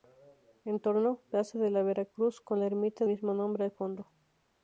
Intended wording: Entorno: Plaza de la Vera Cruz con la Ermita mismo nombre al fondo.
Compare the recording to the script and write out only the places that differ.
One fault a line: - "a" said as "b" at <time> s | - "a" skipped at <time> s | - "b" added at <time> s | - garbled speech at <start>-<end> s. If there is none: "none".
none